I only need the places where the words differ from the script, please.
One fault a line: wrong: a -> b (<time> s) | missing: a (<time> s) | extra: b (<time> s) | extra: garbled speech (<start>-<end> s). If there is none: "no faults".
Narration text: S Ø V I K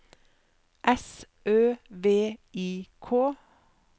no faults